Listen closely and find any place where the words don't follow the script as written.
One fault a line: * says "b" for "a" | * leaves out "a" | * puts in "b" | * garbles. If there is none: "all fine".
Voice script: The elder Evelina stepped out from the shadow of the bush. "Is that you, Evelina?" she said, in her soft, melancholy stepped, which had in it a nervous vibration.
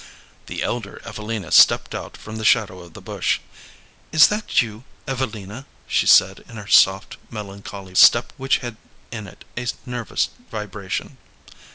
all fine